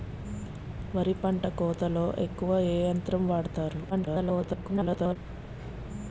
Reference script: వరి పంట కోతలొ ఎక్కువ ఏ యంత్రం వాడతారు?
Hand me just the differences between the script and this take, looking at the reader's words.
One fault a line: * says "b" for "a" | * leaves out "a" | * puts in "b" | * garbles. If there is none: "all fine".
* garbles